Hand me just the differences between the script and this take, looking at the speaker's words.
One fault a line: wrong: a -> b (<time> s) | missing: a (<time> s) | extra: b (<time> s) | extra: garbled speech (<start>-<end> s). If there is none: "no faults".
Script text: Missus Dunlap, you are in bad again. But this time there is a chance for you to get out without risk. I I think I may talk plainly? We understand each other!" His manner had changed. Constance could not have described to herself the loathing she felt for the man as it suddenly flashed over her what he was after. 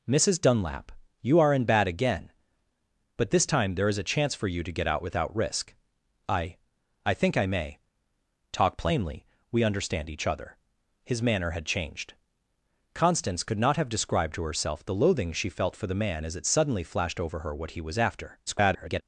extra: garbled speech (18.5-19.0 s)